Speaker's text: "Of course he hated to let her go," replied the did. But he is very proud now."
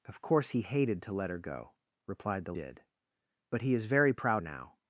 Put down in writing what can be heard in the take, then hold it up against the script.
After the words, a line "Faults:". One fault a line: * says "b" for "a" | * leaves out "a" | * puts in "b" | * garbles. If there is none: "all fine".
"Of course he hated to let her go," replied the did. But he is very proud now."
Faults:
all fine